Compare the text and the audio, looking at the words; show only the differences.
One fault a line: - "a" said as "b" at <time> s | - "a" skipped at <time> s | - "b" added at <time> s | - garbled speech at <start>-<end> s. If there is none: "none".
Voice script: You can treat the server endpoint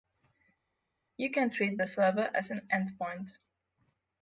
- "as an" added at 2.3 s